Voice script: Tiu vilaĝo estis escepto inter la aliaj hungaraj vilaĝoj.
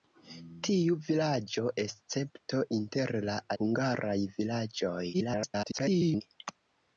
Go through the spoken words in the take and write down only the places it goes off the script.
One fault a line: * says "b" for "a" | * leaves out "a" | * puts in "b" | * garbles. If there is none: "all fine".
* leaves out "estis"
* leaves out "aliaj"
* garbles